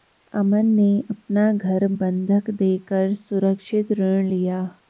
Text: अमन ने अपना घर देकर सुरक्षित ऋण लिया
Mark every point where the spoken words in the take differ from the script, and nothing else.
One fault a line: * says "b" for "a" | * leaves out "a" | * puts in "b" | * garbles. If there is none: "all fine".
* puts in "बंधक"